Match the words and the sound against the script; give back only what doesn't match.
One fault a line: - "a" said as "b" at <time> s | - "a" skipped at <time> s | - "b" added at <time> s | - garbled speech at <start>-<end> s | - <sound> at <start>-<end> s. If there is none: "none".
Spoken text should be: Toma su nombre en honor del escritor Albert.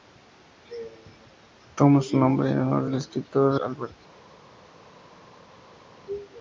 none